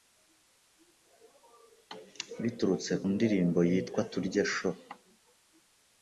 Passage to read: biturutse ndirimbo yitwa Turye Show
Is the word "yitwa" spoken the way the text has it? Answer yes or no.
yes